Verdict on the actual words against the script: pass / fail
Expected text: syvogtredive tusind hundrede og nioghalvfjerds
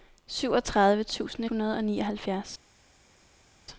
pass